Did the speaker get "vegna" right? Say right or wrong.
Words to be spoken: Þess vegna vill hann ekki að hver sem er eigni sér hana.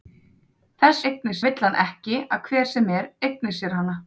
wrong